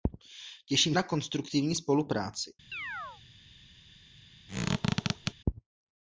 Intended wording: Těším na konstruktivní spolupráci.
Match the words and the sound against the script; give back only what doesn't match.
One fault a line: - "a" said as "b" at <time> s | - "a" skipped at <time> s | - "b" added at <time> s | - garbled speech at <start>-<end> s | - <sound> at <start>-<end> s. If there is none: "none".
- chirp at 2.7-3.2 s
- squeak at 4.5-5.3 s